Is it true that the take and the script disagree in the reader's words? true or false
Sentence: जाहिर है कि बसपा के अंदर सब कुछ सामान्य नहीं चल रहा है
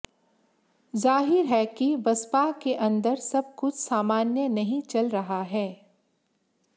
false